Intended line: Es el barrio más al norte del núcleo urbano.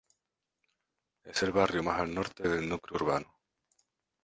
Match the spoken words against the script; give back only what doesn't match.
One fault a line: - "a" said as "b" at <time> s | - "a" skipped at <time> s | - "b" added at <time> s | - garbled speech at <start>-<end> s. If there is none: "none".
none